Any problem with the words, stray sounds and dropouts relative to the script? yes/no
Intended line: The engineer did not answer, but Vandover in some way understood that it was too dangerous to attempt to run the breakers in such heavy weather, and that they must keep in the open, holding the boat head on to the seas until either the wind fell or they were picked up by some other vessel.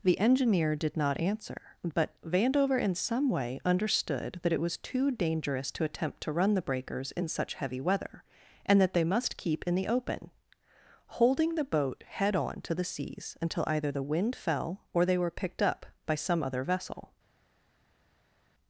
no